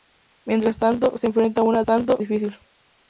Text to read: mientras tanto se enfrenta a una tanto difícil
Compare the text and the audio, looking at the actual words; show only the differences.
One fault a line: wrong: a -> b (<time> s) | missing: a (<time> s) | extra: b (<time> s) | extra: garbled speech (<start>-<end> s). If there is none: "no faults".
no faults